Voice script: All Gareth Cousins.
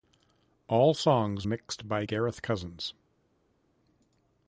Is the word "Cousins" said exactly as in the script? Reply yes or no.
yes